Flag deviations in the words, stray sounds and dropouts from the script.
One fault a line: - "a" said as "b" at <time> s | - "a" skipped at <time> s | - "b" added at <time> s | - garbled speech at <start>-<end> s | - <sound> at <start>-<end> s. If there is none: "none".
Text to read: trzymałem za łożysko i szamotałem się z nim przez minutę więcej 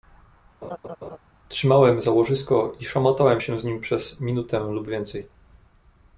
- laugh at 0.6-1.2 s
- "lub" added at 4.6 s